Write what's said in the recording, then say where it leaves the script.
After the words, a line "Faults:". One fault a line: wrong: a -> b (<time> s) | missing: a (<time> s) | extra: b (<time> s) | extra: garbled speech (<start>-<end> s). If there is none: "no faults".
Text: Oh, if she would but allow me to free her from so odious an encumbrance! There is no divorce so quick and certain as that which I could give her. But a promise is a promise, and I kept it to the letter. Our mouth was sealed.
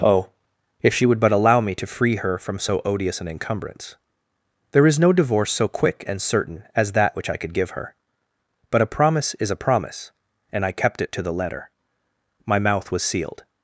Oh, if she would but allow me to free her from so odious an encumbrance! There is no divorce so quick and certain as that which I could give her. But a promise is a promise, and I kept it to the letter. My mouth was sealed.
Faults:
wrong: Our -> My (12.5 s)